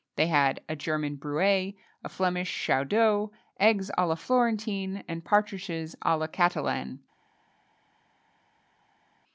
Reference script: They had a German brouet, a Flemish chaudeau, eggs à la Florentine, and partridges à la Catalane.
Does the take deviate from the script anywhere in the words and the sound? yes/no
no